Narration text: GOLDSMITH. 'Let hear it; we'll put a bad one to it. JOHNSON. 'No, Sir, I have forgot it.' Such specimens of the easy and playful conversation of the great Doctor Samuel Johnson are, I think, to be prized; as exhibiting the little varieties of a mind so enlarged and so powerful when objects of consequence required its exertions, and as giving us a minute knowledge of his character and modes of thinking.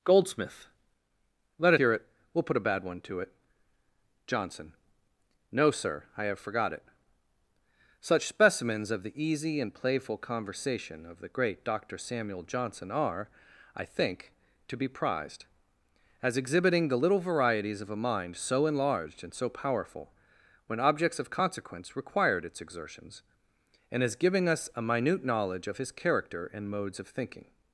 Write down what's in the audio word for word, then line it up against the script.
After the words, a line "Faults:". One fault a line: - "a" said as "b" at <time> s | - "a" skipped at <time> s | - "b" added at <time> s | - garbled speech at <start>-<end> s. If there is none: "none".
GOLDSMITH. 'Let hear it; we'll put a bad one to it. JOHNSON. 'No, Sir, I have forgot it.' Such specimens of the easy and playful conversation of the great Doctor Samuel Johnson are, I think, to be prized; as exhibiting the little varieties of a mind so enlarged and so powerful when objects of consequence required its exertions, and as giving us a minute knowledge of his character and modes of thinking.
Faults:
none